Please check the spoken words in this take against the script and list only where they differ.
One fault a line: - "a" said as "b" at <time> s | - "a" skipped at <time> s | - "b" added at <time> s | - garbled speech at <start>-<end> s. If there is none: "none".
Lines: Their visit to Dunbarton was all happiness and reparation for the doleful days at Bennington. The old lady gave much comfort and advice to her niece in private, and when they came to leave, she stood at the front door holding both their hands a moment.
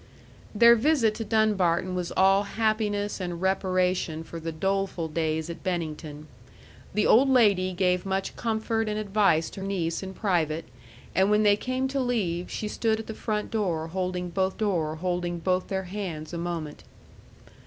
- "her" skipped at 9.6 s
- "door holding both" added at 14.6 s